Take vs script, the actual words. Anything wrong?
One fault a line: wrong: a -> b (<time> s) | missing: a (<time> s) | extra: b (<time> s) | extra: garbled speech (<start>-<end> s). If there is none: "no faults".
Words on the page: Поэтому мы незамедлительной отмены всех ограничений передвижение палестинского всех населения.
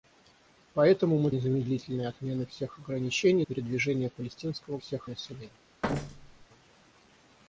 no faults